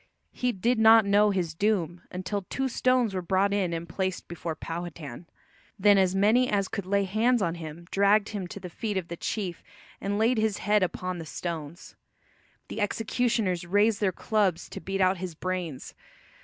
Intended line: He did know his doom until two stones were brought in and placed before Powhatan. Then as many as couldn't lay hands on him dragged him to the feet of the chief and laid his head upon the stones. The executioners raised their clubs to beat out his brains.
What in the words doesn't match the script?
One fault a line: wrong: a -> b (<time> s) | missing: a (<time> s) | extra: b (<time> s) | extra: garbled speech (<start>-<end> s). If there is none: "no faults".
extra: not (0.8 s)
wrong: couldn't -> could (6.7 s)